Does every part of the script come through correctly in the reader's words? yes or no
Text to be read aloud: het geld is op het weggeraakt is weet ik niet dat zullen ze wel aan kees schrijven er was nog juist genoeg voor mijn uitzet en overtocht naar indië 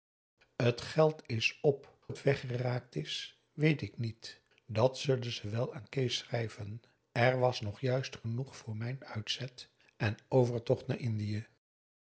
yes